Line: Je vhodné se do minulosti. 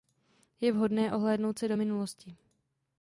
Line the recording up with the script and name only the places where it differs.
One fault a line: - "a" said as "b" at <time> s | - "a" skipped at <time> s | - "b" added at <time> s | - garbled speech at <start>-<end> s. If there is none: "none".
- "ohlédnout" added at 1.1 s